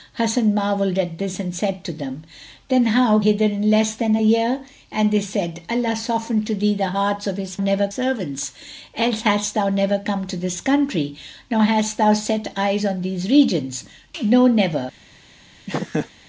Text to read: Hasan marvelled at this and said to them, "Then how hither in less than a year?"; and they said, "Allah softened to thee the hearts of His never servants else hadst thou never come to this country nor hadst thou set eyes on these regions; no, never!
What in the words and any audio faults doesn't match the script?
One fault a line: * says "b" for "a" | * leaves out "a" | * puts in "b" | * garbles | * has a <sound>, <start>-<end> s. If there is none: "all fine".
* has a laugh, 15.7-16.1 s